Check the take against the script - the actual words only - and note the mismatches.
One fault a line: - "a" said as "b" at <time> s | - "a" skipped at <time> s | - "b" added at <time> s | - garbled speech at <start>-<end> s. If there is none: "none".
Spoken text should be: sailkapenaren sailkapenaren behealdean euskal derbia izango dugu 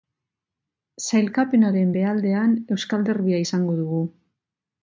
- "sailkapenaren" skipped at 1.9 s